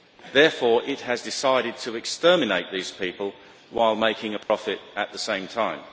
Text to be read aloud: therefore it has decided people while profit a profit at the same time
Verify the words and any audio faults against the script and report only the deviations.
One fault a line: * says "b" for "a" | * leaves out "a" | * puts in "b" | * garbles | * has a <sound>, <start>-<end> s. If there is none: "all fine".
* puts in "to exterminate these"
* says "making" for "profit"
* has a dropout, 4.4-4.5 s